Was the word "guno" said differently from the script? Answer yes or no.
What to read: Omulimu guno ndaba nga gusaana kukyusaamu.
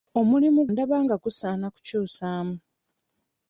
yes